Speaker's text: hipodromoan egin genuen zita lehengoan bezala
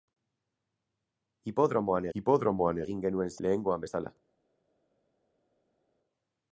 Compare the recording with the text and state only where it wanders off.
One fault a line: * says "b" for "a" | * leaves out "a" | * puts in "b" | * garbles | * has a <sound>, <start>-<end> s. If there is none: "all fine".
* puts in "hipodromoan"
* leaves out "zita"